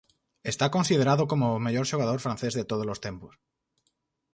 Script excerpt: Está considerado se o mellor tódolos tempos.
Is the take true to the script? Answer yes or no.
no